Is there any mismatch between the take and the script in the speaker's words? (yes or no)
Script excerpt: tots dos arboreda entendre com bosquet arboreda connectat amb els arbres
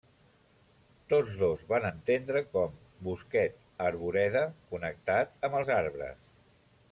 yes